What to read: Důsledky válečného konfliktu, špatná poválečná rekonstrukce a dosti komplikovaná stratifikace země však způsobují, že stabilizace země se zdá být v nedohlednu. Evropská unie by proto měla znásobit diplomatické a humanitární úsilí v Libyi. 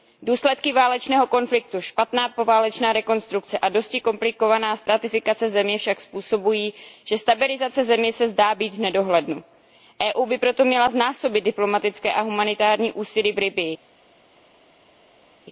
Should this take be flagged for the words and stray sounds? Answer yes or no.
no